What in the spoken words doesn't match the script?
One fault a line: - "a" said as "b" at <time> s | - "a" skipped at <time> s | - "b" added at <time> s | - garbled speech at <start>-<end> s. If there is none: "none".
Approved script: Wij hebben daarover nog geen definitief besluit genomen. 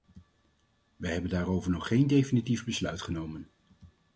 none